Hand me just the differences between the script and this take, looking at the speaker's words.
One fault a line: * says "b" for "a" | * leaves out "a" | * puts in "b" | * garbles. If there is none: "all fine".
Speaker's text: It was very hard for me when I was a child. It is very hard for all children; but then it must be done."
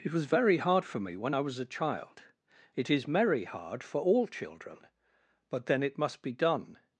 * says "merry" for "very"